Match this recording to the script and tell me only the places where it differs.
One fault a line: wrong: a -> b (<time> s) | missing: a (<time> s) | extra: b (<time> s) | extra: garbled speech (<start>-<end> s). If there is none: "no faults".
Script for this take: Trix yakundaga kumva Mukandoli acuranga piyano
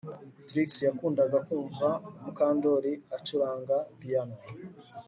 no faults